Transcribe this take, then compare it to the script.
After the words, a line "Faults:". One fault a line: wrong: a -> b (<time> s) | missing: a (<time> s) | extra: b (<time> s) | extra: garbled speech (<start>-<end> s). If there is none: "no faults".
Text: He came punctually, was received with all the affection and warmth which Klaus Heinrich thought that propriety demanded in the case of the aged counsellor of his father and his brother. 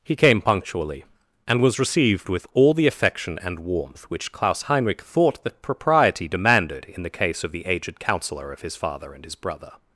He came punctually, and was received with all the affection and warmth which Klaus Heinrich thought that propriety demanded in the case of the aged counsellor of his father and his brother.
Faults:
extra: and (1.5 s)